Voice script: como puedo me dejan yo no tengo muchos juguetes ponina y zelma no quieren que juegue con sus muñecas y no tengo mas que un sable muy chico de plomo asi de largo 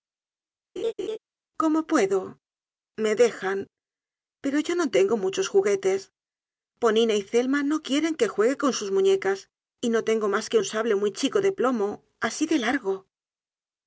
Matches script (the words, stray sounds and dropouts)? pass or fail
fail